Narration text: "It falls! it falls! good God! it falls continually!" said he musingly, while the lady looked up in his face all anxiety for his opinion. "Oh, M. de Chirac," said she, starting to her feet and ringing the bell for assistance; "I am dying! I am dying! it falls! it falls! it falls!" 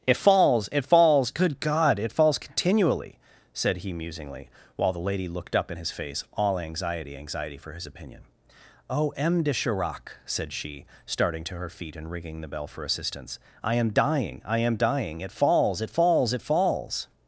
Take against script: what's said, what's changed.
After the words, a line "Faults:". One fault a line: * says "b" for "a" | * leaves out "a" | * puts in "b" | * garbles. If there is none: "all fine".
"It falls! it falls! good God! it falls continually!" said he musingly, while the lady looked up in his face all anxiety anxiety for his opinion. "Oh, M. de Chirac," said she, starting to her feet and ringing the bell for assistance; "I am dying! I am dying! it falls! it falls! it falls!"
Faults:
* puts in "anxiety"